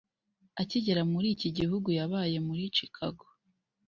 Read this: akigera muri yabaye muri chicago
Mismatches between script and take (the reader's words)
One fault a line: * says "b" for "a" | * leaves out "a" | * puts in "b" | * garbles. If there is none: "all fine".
* puts in "iki gihugu"